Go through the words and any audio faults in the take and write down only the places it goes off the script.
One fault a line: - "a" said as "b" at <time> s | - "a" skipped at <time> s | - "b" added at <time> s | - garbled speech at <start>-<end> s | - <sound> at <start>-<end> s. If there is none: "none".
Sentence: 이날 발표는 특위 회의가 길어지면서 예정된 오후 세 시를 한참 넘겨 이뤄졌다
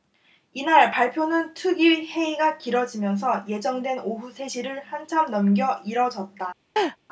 - laugh at 6.8-7.0 s